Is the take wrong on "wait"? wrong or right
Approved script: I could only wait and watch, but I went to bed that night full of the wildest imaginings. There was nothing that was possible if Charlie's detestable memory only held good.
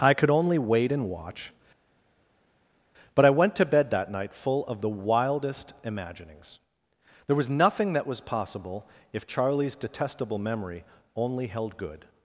right